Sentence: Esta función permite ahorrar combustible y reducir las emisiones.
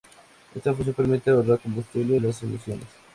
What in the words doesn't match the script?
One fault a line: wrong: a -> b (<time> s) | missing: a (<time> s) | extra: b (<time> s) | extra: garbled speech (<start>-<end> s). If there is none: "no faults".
missing: y reducir (2.2 s)